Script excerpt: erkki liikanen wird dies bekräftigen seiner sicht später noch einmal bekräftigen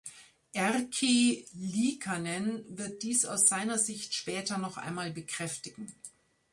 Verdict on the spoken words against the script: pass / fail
fail